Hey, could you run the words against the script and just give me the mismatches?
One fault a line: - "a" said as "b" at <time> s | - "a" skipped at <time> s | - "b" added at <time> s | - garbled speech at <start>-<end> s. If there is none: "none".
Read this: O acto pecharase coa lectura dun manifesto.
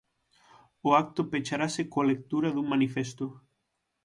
none